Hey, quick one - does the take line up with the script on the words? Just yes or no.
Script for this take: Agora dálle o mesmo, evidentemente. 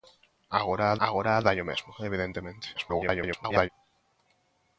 no